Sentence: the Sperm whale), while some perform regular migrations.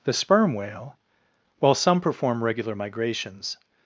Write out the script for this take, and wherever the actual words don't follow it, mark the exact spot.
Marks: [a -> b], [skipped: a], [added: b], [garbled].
the Sperm whale), while some perform regular migrations.